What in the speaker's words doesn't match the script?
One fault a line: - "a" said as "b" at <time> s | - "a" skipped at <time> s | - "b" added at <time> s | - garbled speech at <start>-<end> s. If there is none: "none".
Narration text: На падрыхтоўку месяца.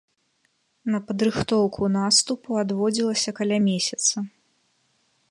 - "наступу адводзілася каля" added at 2.0 s